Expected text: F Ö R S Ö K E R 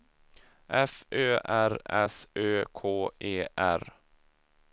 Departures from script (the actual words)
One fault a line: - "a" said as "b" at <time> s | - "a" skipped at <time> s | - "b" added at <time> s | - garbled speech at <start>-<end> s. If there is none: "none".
none